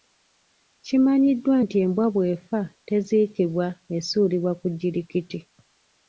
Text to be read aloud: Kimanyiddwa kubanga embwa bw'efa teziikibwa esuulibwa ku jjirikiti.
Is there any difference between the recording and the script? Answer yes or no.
yes